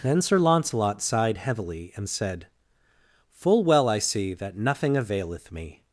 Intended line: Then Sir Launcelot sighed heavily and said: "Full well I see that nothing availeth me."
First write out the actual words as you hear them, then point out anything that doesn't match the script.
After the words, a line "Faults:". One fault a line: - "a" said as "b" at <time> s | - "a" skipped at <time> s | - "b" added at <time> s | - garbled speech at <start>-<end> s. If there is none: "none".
Then Sir Launcelot sighed heavily and said: "Full well I see that nothing availeth me."
Faults:
none